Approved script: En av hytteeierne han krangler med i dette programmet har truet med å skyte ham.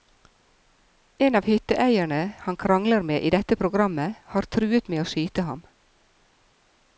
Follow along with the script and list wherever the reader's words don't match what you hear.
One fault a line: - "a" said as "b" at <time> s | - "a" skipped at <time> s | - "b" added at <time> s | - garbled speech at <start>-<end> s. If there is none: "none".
none